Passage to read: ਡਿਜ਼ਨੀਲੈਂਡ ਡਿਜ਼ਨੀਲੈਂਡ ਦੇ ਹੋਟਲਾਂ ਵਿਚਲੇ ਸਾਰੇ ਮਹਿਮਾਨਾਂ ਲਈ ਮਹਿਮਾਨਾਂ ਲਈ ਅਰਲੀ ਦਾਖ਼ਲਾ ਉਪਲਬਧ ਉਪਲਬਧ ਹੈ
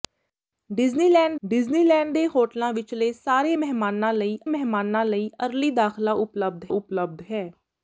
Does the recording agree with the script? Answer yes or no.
yes